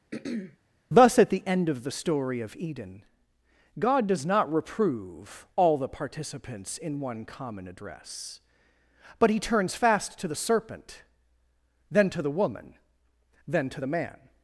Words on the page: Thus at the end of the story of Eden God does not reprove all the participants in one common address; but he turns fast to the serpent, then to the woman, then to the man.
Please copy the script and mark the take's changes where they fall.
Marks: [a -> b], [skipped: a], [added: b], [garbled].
Thus at the end of the story of Eden God does not reprove all the participants in one common address; but he turns fast to the serpent, then to the woman, then to the man.